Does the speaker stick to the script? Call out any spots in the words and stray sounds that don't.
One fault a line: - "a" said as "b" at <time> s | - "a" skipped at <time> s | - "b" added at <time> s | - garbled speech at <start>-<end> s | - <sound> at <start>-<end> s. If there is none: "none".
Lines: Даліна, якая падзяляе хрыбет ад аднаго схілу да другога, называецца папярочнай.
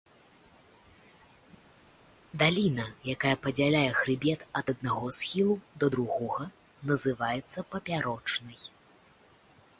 none